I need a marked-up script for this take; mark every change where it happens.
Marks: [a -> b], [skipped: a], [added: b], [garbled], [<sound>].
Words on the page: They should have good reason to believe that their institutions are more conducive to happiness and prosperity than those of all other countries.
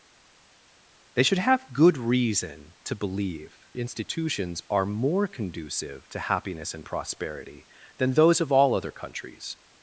They should have good reason to believe [skipped: that their] institutions are more conducive to happiness and prosperity than those of all other countries.